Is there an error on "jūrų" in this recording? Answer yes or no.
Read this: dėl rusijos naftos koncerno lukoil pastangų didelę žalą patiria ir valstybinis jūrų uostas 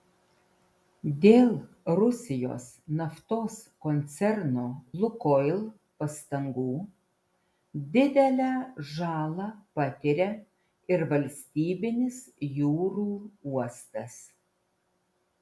no